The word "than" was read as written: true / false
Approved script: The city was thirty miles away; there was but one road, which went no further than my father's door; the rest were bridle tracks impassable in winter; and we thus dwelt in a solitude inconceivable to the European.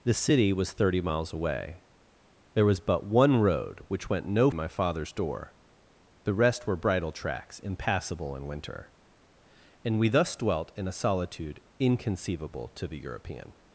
false